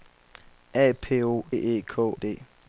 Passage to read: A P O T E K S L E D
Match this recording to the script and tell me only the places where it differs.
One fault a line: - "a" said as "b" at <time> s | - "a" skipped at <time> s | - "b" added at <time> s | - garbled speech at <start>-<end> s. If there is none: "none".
- "T" skipped at 1.4 s
- "S L E" skipped at 2.1 s